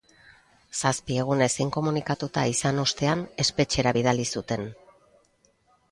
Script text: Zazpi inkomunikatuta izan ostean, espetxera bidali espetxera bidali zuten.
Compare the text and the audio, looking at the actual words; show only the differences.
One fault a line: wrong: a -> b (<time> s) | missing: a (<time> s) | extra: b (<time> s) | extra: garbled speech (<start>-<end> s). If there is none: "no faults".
extra: egunez (1.2 s)
missing: espetxera bidali (4.3 s)